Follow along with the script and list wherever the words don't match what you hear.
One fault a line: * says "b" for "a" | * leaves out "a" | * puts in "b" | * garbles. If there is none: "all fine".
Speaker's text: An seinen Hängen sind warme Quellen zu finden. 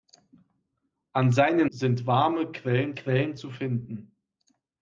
* leaves out "Hängen"
* puts in "Quellen"